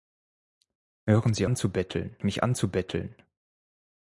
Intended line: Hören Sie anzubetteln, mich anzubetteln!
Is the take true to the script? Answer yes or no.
yes